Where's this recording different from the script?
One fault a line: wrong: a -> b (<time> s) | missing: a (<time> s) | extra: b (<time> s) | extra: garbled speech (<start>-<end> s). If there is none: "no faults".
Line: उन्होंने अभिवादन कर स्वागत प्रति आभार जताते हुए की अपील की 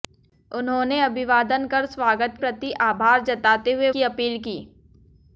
no faults